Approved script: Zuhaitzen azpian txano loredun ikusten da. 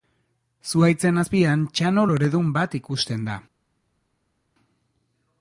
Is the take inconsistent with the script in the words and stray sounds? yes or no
yes